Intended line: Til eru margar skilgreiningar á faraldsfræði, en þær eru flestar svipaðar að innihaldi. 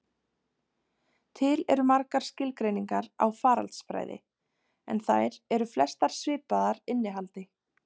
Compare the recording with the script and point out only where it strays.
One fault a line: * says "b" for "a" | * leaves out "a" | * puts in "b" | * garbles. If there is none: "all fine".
* leaves out "að"